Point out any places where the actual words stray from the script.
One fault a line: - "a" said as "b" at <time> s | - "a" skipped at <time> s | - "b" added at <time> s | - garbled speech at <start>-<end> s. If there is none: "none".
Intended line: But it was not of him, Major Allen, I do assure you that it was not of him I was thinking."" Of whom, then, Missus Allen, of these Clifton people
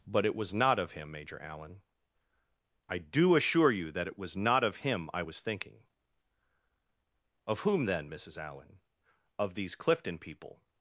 none